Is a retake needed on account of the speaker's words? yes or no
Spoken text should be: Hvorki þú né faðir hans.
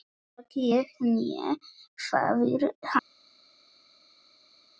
yes